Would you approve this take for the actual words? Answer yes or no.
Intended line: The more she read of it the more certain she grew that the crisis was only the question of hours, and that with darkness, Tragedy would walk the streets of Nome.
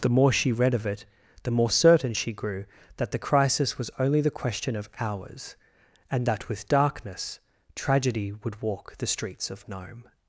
yes